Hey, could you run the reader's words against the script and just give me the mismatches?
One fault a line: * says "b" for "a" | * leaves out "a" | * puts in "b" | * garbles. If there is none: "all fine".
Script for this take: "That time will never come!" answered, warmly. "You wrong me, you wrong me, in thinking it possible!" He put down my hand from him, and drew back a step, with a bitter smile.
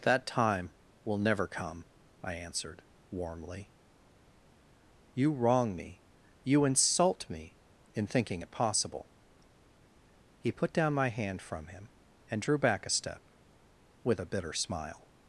* puts in "I"
* says "insult" for "wrong"